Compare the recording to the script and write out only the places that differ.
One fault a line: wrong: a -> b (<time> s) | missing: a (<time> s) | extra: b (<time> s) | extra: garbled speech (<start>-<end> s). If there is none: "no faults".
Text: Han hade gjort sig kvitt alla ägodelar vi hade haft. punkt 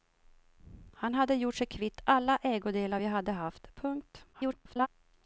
extra: garbled speech (4.3-4.9 s)